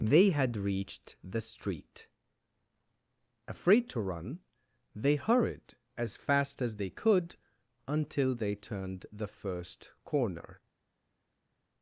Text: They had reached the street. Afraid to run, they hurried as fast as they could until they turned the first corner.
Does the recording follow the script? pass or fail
pass